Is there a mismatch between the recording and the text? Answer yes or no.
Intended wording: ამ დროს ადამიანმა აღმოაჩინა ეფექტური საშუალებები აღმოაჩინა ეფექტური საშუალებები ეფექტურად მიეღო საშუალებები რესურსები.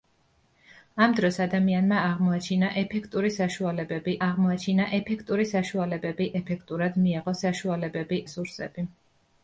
no